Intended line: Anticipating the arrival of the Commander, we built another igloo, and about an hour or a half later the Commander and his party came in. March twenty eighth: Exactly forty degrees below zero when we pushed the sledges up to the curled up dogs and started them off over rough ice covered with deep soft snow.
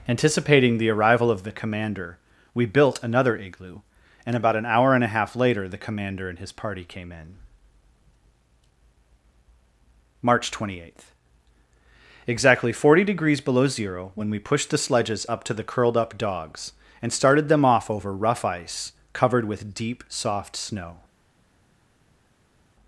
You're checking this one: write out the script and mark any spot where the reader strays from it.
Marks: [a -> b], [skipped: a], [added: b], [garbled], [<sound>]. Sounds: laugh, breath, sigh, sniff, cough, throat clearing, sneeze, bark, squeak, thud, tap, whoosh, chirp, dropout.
Anticipating the arrival of the Commander, we built another igloo, and about an hour [or -> and] a half later the Commander and his party came in. March twenty eighth: Exactly forty degrees below zero when we pushed the sledges up to the curled up dogs and started them off over rough ice covered with deep soft snow.